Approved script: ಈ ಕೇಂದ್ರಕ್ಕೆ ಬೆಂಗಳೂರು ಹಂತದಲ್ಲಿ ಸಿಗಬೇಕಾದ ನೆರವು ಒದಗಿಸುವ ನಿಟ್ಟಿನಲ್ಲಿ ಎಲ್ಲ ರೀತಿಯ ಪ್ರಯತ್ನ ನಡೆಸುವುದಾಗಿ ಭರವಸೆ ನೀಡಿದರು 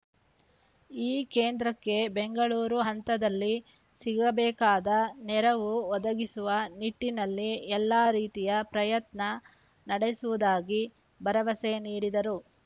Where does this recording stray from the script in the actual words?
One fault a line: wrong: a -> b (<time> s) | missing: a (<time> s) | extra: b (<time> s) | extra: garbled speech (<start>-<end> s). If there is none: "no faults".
no faults